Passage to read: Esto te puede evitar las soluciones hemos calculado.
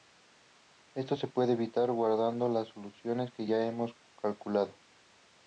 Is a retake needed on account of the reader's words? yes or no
yes